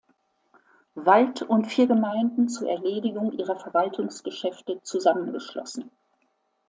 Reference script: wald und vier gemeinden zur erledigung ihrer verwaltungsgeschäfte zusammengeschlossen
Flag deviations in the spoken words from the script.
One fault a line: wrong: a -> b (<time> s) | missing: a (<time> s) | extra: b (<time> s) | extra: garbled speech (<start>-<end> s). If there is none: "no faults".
no faults